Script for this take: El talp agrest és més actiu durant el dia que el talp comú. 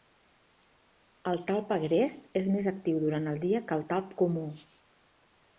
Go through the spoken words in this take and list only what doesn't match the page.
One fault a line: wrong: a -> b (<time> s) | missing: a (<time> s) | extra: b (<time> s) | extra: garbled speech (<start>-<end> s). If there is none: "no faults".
no faults